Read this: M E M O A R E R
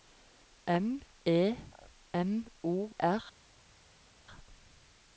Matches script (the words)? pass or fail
fail